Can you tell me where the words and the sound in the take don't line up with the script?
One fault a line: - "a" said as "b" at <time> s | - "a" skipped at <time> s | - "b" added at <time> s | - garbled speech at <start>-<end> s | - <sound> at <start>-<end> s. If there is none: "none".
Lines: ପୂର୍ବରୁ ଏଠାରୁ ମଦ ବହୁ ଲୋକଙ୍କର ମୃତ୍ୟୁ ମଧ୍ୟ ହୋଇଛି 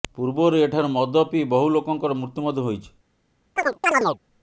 - "ପିଇ" added at 1.3 s
- chirp at 3.6-4.2 s